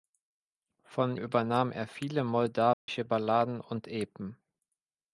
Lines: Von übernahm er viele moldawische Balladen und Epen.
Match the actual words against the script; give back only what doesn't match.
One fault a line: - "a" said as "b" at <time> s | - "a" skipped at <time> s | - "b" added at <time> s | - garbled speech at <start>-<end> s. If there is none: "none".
none